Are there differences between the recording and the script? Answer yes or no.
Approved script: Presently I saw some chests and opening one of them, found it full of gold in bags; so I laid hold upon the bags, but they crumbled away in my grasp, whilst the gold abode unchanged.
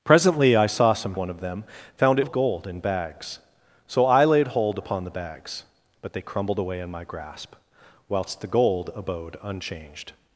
yes